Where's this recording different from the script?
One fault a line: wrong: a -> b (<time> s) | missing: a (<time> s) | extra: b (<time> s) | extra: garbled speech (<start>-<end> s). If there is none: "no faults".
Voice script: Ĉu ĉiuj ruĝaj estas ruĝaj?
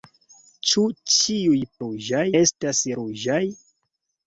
no faults